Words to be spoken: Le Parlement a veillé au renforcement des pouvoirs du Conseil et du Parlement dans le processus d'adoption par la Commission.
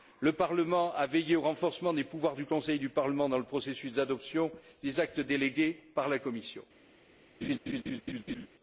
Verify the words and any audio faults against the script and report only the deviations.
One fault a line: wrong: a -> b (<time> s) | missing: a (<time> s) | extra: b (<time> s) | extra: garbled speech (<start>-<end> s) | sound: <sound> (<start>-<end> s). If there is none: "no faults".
extra: des actes délégués (4.8 s)
sound: laugh (7.4-8.5 s)